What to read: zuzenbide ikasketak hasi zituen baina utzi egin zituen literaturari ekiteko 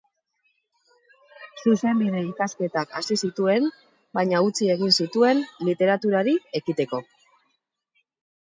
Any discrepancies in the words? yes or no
no